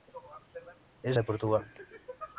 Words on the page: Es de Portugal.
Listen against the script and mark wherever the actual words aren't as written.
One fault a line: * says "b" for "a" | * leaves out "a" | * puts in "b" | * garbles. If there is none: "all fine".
all fine